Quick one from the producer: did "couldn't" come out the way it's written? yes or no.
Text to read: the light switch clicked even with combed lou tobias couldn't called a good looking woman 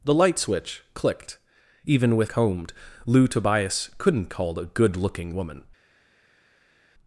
yes